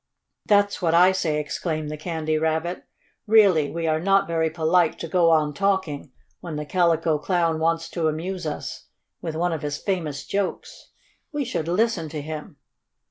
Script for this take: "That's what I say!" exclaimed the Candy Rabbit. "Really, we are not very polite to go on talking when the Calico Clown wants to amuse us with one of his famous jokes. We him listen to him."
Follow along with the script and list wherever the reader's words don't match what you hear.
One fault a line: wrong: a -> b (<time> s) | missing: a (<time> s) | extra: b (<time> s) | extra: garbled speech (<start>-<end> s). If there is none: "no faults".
wrong: him -> should (11.4 s)